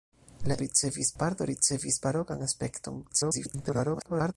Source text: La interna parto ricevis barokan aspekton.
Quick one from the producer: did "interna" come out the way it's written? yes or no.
no